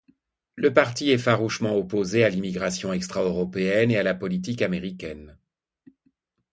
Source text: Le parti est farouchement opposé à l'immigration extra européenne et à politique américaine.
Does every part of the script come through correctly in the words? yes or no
no